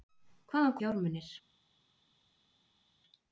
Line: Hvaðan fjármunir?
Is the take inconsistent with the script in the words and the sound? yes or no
no